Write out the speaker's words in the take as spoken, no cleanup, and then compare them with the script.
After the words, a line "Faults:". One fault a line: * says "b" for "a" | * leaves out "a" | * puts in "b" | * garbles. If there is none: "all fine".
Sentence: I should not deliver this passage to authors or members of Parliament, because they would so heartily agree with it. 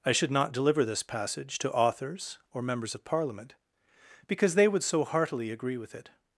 I should not deliver this passage to authors or members of Parliament, because they would so heartily agree with it.
Faults:
all fine